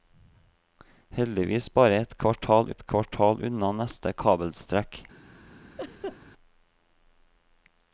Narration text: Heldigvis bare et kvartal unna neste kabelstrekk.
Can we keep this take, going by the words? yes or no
no